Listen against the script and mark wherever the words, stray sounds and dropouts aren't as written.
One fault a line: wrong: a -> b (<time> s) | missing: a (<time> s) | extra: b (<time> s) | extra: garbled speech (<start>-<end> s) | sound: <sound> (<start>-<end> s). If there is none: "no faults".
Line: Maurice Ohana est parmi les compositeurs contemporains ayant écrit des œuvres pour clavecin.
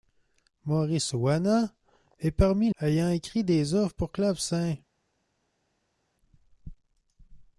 missing: les compositeurs contemporains (2.7 s)